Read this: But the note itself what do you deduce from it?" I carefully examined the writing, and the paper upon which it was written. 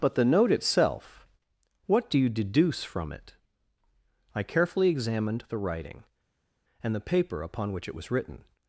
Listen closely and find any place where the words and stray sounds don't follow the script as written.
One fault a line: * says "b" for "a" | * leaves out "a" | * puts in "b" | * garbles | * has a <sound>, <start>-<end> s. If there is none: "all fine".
all fine